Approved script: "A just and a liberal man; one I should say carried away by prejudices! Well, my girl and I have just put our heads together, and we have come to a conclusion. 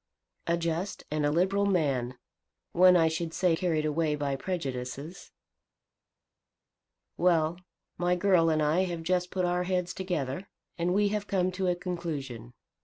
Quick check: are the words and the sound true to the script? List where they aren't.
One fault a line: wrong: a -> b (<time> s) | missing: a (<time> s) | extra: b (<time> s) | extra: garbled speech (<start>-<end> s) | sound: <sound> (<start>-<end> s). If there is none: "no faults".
no faults